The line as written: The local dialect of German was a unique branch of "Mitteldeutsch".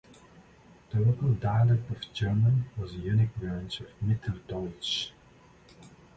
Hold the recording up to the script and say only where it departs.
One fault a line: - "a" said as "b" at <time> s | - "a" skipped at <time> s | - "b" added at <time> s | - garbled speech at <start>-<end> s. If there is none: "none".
none